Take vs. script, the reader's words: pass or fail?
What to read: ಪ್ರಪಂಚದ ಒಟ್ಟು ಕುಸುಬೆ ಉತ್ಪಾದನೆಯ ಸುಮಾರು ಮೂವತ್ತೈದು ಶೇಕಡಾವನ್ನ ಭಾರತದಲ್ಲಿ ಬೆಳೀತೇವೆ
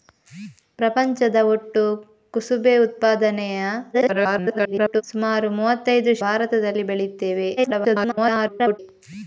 fail